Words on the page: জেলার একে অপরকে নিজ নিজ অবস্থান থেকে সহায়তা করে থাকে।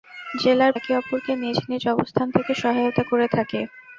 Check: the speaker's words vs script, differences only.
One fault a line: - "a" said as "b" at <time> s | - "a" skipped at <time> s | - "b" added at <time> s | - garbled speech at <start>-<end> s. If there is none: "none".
none